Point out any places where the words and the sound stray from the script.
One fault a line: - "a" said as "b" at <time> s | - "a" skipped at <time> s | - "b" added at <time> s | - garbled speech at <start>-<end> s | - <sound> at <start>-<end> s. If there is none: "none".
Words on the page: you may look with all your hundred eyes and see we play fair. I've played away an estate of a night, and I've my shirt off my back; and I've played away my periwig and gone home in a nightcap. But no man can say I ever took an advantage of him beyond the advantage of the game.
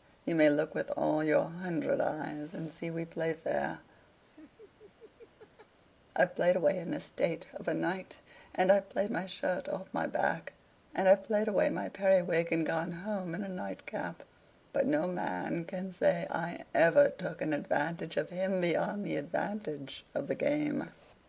- laugh at 4.2-5.8 s
- "played" added at 8.9 s